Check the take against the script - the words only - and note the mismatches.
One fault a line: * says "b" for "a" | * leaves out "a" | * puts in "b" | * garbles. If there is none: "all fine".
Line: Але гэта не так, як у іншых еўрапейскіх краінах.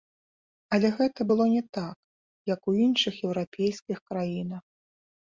* puts in "было"